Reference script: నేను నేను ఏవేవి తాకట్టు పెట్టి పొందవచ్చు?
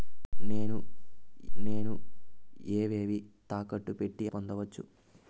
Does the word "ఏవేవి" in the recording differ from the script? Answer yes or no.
no